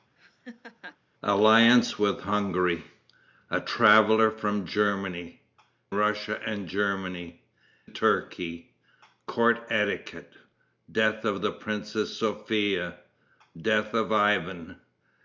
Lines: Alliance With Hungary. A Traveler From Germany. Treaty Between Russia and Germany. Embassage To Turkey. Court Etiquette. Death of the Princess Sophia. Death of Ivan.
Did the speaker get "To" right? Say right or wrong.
wrong